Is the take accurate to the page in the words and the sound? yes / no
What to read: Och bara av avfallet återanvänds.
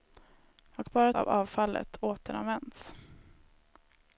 yes